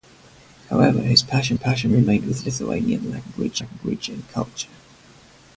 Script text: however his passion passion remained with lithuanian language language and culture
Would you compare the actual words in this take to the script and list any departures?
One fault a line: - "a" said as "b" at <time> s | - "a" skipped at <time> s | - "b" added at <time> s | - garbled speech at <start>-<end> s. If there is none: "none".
none